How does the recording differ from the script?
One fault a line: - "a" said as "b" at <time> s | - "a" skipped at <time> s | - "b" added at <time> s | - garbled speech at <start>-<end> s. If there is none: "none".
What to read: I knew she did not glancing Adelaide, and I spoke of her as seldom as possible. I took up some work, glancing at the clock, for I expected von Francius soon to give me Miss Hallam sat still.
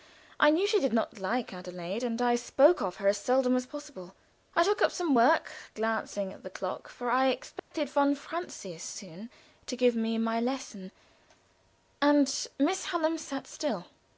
- "glancing" said as "like" at 1.2 s
- "my lesson and" added at 10.2 s